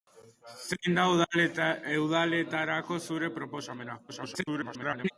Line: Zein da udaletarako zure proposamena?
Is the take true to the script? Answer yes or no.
no